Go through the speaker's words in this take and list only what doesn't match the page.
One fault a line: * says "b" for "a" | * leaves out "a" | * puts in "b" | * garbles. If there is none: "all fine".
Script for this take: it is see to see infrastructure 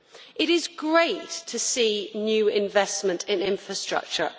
* says "great" for "see"
* puts in "new investment in"